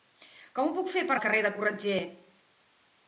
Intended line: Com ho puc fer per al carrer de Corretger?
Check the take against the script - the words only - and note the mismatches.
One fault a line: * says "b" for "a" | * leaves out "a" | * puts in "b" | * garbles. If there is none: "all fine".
all fine